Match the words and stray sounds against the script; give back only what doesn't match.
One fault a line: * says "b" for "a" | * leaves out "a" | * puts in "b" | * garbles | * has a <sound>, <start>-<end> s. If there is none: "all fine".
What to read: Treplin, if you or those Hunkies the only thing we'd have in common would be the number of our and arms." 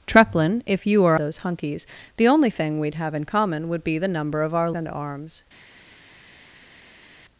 all fine